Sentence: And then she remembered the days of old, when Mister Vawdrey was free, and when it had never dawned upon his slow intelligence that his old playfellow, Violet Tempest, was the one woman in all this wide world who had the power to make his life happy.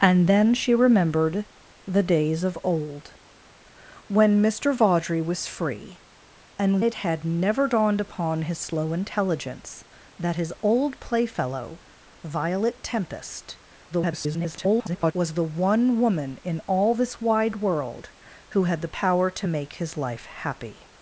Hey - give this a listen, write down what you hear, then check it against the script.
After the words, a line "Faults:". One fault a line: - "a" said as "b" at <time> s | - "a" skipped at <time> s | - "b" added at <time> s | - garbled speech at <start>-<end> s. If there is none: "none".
And then she remembered the days of old, when Mister Vawdrey was free, and it had never dawned upon his slow intelligence that his old playfellow, Violet Tempest, [garbled] was the one woman in all this wide world who had the power to make his life happy.
Faults:
- "when" skipped at 6.8 s
- garbled speech at 13.9-15.1 s